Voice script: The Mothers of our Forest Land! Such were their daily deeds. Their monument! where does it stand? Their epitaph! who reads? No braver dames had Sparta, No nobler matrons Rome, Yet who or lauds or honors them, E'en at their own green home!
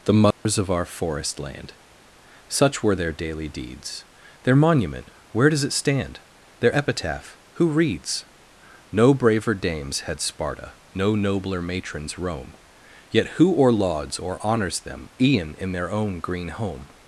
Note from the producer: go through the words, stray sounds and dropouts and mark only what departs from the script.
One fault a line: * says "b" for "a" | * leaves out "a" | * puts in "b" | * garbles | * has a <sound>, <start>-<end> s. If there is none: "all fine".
* has a dropout, 0.3-0.5 s
* says "in" for "at"